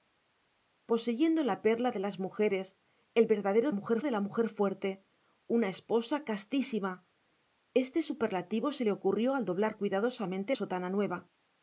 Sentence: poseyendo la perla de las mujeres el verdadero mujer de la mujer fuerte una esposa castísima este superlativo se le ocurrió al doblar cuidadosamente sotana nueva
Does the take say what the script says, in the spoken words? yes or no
yes